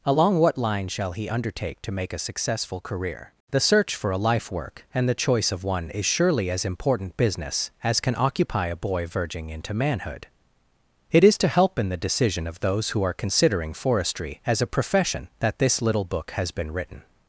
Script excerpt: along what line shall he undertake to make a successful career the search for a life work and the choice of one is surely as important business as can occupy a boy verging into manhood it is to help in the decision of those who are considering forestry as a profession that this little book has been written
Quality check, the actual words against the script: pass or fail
pass